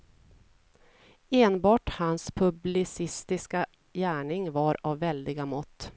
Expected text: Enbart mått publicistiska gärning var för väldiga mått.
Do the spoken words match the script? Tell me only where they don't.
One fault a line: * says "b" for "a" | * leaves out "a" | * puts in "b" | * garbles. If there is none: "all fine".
* says "hans" for "mått"
* says "av" for "för"